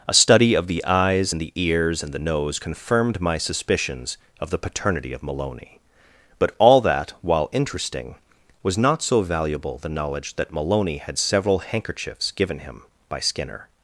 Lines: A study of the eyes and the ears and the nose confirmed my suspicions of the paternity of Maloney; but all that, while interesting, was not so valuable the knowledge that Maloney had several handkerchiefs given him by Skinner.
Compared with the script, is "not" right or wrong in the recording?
right